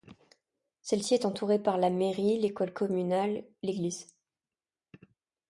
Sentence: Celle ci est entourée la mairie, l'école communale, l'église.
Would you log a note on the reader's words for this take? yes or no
yes